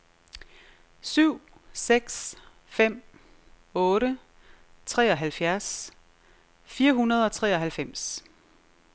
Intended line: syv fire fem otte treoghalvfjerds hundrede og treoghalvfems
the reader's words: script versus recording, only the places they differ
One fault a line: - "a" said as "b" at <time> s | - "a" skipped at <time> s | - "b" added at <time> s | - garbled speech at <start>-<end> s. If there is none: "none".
- "fire" said as "seks" at 1.7 s
- "fire" added at 6.6 s